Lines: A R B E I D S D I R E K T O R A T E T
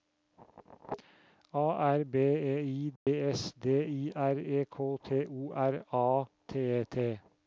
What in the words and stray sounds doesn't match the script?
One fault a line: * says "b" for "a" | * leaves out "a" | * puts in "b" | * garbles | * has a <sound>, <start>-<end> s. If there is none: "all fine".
* has a dropout, 3.0-3.1 s